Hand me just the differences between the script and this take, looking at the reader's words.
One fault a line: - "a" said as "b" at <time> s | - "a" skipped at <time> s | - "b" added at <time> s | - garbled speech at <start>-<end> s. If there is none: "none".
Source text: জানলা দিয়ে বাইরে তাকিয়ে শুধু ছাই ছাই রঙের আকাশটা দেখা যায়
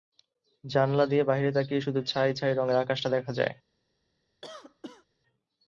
none